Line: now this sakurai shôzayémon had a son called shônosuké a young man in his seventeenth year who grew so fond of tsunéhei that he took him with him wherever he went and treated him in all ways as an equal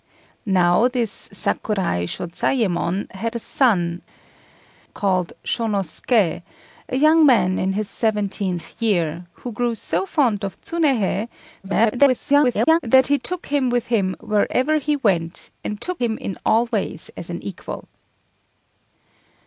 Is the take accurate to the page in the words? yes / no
no